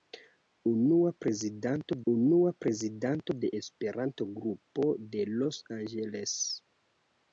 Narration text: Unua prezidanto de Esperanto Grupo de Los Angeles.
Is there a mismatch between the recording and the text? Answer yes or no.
yes